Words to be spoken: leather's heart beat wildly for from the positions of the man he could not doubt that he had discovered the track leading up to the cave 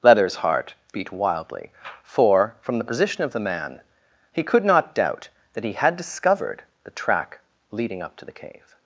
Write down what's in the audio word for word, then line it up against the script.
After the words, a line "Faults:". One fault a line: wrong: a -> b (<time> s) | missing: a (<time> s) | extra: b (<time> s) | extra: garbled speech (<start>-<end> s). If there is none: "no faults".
leather's heart beat wildly for from the position of the man he could not doubt that he had discovered the track leading up to the cave
Faults:
wrong: positions -> position (2.8 s)